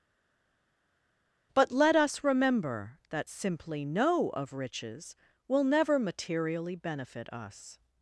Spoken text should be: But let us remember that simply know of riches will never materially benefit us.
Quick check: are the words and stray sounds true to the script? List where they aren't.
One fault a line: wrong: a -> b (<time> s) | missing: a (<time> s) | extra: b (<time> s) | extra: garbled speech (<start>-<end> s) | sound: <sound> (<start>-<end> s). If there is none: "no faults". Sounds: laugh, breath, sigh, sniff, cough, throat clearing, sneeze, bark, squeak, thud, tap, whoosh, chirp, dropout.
no faults